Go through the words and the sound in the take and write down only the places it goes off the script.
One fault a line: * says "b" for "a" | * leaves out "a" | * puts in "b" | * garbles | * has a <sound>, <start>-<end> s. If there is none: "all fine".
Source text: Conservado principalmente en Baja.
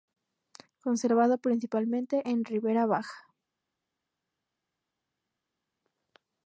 * puts in "Ribera"